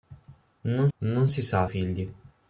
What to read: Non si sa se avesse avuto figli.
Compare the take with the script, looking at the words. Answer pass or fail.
fail